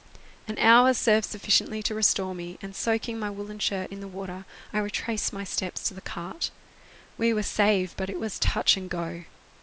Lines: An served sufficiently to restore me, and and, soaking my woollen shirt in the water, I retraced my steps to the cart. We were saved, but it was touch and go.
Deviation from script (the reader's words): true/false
true